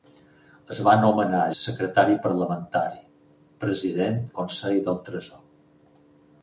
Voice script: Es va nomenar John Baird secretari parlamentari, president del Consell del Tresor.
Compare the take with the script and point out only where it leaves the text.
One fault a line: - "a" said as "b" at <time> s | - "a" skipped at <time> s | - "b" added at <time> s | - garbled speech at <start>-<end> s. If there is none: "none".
- "John Baird" skipped at 1.4 s
- "del" skipped at 4.2 s